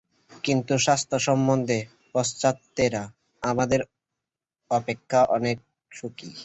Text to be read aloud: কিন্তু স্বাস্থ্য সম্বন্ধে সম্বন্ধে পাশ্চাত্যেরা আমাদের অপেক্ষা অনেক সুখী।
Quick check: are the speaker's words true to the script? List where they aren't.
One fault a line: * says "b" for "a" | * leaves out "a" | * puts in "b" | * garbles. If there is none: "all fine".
* leaves out "সম্বন্ধে"